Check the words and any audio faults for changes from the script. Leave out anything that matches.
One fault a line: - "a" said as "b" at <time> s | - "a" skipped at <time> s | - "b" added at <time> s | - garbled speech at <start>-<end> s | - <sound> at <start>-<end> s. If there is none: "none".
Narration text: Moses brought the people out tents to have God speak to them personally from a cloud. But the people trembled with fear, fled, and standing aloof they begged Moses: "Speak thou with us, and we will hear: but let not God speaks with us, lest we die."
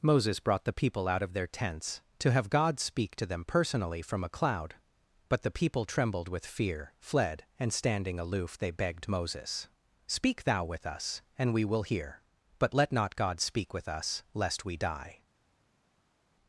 - "of their" added at 1.2 s
- "speaks" said as "speak" at 13.4 s